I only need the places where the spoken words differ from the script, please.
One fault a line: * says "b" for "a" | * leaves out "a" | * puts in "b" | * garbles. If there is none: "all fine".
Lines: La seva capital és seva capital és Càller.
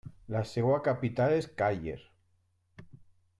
* leaves out "seva capital és"